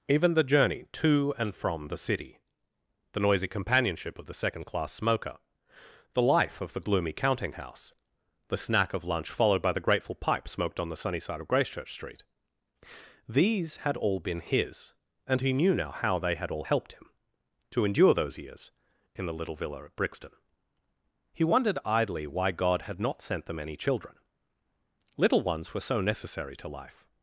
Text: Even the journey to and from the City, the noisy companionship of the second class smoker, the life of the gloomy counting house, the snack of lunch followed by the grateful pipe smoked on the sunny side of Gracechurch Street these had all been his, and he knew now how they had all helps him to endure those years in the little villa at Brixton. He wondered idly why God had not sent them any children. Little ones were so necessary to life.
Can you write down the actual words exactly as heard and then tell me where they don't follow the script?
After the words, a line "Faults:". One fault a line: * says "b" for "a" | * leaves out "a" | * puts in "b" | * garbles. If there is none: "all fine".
Even the journey to and from the City, the noisy companionship of the second class smoker, the life of the gloomy counting house, the snack of lunch followed by the grateful pipe smoked on the sunny side of Gracechurch Street these had all been his, and he knew now how they had all helped him to endure those years in the little villa at Brixton. He wondered idly why God had not sent them any children. Little ones were so necessary to life.
Faults:
* says "helped" for "helps"